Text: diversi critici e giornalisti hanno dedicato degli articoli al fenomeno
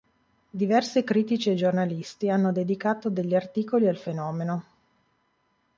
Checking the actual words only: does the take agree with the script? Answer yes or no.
yes